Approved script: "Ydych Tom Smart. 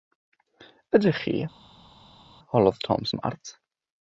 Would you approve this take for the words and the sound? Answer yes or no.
no